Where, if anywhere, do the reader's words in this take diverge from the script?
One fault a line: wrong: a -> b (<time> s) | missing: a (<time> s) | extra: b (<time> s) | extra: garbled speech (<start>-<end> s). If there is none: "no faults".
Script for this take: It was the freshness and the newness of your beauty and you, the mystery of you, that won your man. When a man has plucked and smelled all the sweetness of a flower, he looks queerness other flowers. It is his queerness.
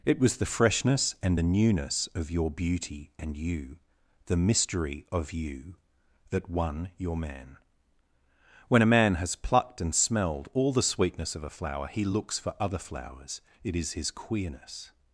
wrong: queerness -> for (12.4 s)